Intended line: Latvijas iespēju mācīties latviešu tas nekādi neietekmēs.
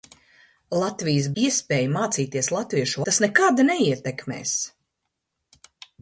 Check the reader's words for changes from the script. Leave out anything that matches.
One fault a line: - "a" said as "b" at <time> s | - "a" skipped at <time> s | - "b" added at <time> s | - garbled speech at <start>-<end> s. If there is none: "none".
none